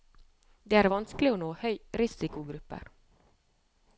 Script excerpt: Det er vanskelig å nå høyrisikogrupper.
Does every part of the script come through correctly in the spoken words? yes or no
yes